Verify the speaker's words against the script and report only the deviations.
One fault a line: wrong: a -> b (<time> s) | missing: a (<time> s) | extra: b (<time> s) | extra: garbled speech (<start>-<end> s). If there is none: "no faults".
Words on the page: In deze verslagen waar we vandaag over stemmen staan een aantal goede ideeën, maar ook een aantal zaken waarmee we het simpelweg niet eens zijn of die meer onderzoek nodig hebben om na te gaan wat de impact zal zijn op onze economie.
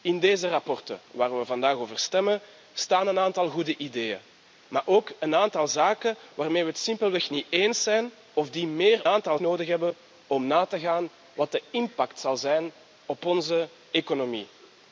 wrong: onderzoek -> aantal (9.1 s)